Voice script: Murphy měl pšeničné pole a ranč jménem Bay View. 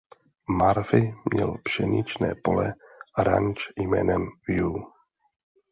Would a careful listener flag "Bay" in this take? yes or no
yes